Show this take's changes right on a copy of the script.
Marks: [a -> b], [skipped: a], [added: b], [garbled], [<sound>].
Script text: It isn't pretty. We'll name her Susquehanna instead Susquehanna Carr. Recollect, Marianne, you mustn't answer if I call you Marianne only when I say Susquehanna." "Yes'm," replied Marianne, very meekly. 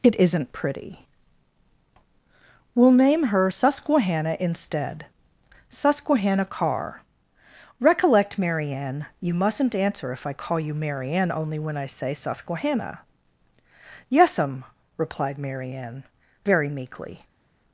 It isn't pretty. We'll name her Susquehanna instead Susquehanna Carr. Recollect, Marianne, you mustn't answer if I call you Marianne only when I say Susquehanna." "Yes'm," replied Marianne, very meekly.